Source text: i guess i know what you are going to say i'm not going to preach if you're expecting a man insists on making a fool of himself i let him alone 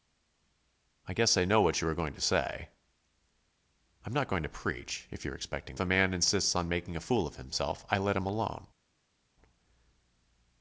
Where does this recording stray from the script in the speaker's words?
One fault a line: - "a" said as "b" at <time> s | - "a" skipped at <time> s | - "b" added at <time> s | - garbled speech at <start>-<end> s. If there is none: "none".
none